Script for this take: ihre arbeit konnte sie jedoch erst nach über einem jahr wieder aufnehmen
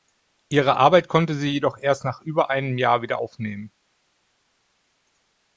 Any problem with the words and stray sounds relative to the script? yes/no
no